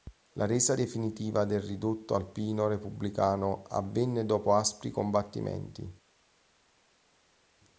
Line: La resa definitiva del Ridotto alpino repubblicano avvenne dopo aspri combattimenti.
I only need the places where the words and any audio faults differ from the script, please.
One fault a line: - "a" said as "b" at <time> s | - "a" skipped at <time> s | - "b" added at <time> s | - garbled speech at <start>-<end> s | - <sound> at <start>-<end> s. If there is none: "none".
none